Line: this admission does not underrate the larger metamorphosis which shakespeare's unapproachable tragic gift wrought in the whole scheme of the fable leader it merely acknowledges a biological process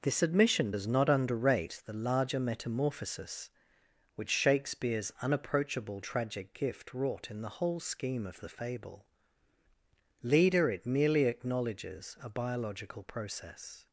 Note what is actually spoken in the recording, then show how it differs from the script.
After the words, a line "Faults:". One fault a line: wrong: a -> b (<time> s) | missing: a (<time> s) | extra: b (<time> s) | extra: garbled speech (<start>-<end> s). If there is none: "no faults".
this admission does not underrate the larger metamorphosis which shakespeare's unapproachable tragic gift wrought in the whole scheme of the fable leader it merely acknowledges a biological process
Faults:
no faults